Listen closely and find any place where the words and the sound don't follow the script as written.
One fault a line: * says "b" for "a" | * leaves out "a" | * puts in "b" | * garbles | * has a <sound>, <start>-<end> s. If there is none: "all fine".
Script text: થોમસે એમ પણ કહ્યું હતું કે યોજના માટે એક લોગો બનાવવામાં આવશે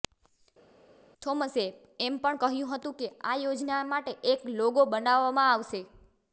* puts in "આ"